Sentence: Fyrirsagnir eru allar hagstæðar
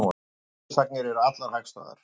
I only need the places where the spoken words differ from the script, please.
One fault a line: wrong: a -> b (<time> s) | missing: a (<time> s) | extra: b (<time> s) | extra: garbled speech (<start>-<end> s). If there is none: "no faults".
no faults